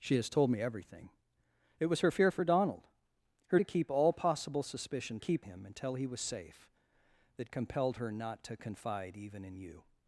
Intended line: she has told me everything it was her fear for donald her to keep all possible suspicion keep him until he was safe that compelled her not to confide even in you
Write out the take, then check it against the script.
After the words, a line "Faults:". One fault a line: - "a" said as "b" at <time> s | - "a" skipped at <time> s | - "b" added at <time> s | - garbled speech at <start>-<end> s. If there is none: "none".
she has told me everything it was her fear for donald her to keep all possible suspicion keep him until he was safe that compelled her not to confide even in you
Faults:
none